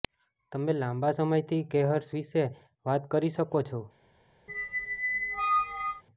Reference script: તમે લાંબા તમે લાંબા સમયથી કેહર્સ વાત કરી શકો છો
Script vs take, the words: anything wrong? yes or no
yes